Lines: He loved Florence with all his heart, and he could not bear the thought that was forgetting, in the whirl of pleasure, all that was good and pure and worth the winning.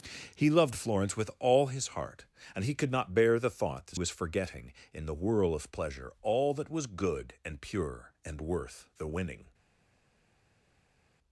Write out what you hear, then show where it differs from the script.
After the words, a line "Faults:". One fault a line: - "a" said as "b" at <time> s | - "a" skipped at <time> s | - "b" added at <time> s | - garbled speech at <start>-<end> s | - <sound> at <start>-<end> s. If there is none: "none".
He loved Florence with all his heart, and he could not bear the thought that was forgetting, in the whirl of pleasure, all that was good and pure and worth the winning.
Faults:
none